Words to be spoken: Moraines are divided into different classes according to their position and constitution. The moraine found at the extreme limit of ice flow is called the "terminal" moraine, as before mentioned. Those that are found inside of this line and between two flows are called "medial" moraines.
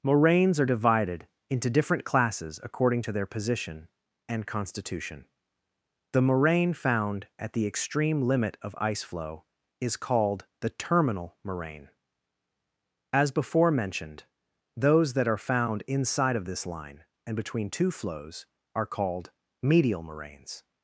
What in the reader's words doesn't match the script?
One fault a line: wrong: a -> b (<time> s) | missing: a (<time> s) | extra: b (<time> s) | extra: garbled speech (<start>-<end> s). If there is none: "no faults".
no faults